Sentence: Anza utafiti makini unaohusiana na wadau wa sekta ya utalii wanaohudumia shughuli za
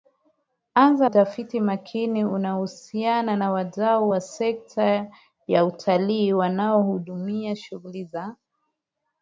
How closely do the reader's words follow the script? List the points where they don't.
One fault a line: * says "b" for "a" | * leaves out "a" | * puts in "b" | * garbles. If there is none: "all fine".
all fine